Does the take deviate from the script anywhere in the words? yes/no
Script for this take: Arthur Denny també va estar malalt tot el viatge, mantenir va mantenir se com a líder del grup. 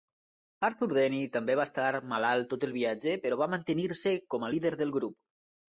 yes